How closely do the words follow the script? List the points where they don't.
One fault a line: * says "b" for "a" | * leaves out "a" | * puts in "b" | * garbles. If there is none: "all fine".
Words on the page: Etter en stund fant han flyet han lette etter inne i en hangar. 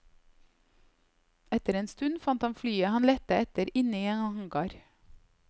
all fine